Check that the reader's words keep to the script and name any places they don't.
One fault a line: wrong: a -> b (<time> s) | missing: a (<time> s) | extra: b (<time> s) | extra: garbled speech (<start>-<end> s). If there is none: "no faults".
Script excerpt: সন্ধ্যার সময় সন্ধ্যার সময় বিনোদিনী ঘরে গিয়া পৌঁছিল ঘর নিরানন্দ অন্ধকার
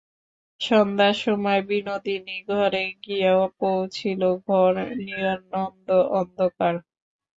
missing: সন্ধ্যার সময় (1.6 s)